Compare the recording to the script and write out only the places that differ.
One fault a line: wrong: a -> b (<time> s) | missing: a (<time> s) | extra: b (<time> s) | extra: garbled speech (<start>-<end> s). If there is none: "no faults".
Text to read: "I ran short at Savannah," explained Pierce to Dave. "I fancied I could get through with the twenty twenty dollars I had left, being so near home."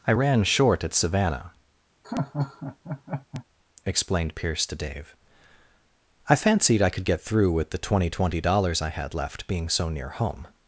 no faults